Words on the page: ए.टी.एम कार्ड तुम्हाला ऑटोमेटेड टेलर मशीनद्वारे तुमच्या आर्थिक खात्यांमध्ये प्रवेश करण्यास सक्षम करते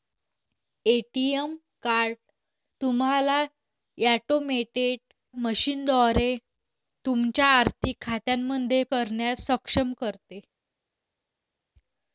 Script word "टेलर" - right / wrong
wrong